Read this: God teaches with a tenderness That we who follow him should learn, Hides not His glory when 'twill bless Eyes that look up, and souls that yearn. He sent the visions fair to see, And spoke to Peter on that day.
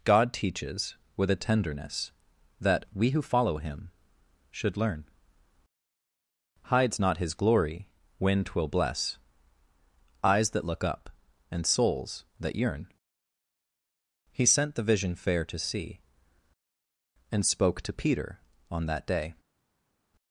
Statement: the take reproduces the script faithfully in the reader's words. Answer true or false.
false